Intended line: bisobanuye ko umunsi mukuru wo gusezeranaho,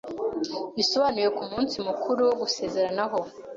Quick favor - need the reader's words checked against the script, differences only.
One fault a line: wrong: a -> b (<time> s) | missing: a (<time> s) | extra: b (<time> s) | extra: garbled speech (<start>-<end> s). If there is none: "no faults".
no faults